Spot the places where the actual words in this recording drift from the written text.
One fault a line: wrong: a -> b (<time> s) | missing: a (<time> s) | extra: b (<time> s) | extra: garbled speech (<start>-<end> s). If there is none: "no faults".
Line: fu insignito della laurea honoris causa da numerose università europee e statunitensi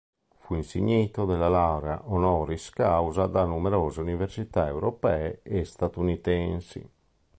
no faults